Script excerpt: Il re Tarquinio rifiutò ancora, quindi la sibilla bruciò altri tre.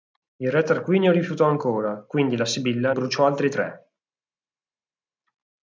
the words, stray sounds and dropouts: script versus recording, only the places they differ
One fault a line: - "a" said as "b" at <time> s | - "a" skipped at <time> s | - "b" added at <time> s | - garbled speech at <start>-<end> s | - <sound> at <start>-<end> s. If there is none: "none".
none